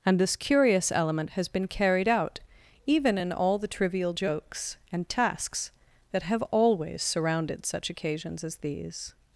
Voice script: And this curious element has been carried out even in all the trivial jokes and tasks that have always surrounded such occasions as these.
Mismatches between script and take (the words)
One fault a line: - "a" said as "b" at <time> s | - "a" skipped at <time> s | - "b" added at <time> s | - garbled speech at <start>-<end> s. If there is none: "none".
none